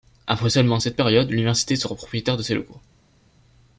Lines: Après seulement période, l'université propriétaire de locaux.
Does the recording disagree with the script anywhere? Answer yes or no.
yes